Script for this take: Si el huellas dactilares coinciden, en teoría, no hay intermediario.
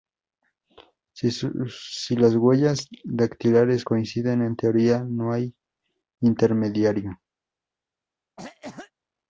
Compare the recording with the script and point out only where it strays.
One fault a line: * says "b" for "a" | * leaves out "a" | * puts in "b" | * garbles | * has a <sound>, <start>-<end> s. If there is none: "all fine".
* says "las" for "el"
* has a cough, 8.4-8.9 s